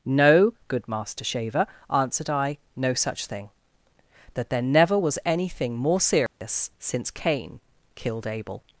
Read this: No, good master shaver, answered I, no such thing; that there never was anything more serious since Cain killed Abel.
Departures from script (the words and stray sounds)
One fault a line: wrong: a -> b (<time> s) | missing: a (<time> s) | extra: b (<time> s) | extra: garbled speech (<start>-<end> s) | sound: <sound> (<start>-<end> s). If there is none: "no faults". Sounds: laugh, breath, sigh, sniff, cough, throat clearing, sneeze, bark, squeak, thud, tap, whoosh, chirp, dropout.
sound: dropout (6.3-6.4 s)